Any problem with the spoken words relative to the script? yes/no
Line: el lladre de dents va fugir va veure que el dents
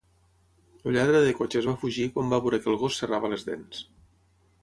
yes